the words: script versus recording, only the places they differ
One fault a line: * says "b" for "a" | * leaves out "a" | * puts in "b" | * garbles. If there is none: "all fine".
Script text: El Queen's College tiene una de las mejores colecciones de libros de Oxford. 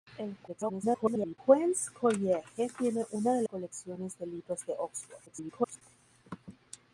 * garbles
* leaves out "las mejores"
* garbles